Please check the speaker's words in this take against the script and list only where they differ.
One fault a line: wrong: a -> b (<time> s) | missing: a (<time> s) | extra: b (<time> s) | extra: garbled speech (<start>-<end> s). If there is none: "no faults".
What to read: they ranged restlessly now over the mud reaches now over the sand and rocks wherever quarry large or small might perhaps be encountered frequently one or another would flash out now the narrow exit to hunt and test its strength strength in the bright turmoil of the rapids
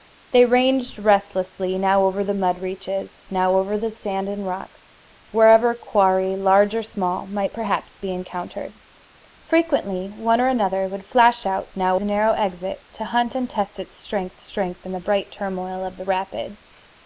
no faults